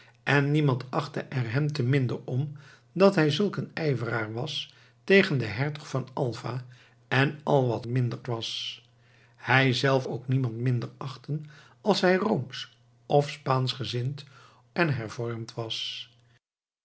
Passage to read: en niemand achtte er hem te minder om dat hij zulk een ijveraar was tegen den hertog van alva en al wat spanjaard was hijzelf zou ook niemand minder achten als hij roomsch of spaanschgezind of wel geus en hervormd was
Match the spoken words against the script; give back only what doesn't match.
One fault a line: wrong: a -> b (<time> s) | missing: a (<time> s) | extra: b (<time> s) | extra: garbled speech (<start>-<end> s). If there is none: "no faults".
wrong: spanjaard -> minder (7.8 s)
missing: zou (10.1 s)
missing: of wel geus (14.2 s)